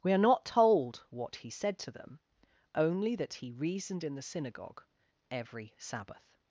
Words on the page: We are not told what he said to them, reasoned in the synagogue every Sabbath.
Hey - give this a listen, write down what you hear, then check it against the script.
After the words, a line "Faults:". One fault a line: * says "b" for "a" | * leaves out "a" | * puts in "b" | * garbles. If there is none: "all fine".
We are not told what he said to them, only that he reasoned in the synagogue every Sabbath.
Faults:
* puts in "only that he"